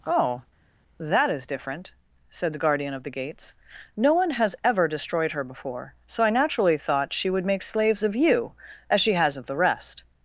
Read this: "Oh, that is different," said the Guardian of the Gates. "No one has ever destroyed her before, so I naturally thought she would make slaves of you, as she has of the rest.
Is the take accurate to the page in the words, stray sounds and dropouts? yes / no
yes